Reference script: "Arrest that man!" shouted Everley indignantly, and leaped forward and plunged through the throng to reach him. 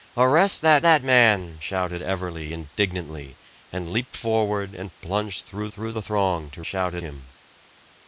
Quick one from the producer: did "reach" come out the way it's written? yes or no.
no